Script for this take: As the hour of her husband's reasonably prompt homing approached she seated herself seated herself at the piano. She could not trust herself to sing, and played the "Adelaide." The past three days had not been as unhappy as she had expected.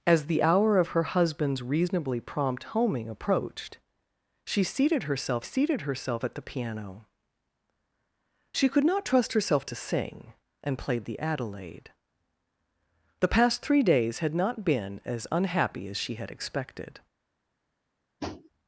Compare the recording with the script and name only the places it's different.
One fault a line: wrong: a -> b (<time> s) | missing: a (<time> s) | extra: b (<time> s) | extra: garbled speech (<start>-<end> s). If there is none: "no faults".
no faults